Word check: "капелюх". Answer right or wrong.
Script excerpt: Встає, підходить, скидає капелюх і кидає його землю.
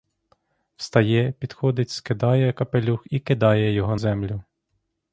right